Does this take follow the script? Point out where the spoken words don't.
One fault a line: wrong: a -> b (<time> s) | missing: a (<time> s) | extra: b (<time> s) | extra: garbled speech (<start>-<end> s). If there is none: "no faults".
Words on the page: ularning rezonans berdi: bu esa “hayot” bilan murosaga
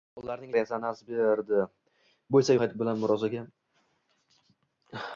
no faults